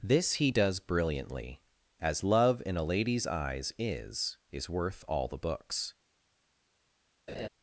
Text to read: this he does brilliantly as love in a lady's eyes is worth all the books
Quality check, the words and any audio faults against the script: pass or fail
fail